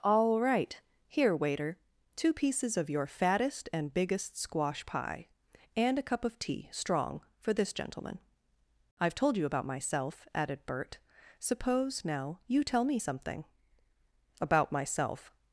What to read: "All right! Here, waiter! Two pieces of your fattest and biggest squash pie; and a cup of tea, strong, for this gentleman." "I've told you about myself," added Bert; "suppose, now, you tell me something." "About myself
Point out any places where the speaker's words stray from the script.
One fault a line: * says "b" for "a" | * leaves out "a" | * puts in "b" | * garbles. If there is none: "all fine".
all fine